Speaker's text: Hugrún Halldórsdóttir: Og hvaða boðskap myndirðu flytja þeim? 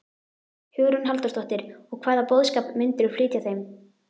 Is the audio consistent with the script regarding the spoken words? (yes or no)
yes